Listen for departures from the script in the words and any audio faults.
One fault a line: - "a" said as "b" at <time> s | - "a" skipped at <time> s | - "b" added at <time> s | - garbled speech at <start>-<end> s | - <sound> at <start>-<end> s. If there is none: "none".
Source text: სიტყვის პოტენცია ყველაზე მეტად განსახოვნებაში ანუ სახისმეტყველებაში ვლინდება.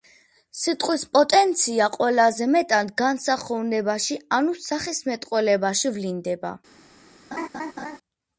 - laugh at 7.3-8.0 s